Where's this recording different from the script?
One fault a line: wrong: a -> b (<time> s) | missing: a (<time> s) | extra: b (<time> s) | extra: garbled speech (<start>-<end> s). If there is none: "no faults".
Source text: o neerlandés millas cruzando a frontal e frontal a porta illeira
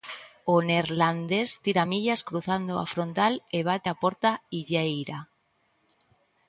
extra: tira (1.6 s)
wrong: frontal -> bate (3.7 s)